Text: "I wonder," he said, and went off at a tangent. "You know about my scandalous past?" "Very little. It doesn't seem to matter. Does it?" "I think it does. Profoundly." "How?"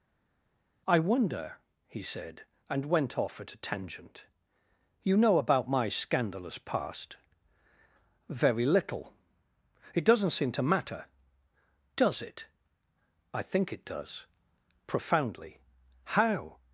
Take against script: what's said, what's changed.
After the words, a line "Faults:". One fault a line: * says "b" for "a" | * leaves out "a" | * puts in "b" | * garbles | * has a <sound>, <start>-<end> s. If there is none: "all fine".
"I wonder," he said, and went off at a tangent. "You know about my scandalous past?" "Very little. It doesn't seem to matter. Does it?" "I think it does. Profoundly." "How?"
Faults:
all fine